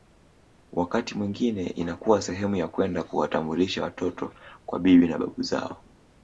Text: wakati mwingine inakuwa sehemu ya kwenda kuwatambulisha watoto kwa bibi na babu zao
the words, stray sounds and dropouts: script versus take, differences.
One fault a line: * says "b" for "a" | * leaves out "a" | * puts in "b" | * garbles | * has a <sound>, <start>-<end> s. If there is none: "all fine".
all fine